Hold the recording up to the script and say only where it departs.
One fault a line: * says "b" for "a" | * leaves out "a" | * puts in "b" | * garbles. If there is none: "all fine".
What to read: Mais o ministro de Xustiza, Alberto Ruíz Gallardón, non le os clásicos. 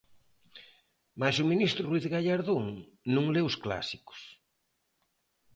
* leaves out "de Xustiza Alberto"